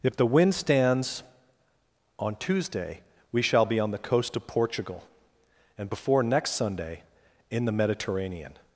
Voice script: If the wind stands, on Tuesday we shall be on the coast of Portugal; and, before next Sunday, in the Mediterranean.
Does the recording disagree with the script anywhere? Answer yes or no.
no